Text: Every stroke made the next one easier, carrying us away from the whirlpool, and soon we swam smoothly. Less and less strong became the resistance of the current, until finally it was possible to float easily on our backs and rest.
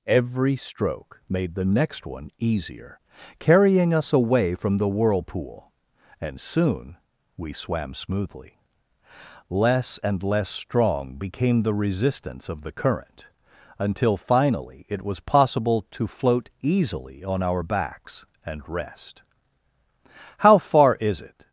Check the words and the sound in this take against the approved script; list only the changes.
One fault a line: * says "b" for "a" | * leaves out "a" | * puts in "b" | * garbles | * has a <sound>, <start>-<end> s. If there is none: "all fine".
* puts in "How far is it"